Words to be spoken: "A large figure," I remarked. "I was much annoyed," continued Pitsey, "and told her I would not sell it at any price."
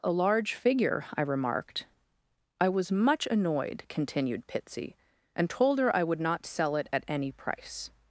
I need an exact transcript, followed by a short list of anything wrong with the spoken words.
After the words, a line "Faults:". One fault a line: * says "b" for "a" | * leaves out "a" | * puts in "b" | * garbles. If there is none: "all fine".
"A large figure," I remarked. "I was much annoyed," continued Pitsey, "and told her I would not sell it at any price."
Faults:
all fine